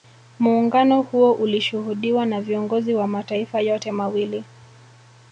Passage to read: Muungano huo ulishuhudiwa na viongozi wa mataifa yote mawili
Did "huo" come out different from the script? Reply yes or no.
no